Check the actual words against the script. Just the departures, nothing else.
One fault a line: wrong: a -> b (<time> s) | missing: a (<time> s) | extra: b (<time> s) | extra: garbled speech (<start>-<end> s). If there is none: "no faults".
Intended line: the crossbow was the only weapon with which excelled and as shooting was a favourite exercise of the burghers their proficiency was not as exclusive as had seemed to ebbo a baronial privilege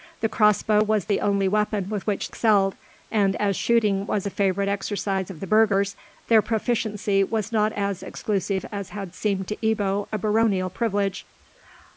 no faults